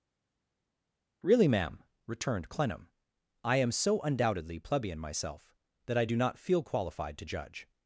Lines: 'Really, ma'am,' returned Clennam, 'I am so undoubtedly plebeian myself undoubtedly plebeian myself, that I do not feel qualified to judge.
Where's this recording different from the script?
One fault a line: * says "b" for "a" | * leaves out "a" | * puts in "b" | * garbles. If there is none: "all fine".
* leaves out "undoubtedly plebeian myself"